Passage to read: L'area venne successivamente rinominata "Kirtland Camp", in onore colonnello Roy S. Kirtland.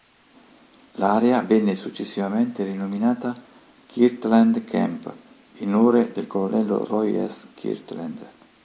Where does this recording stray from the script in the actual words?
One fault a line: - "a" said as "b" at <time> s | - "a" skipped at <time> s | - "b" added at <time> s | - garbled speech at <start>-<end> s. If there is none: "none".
- "del" added at 6.1 s